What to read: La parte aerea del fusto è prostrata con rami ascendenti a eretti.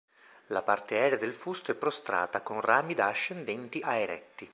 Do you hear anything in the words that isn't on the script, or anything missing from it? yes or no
yes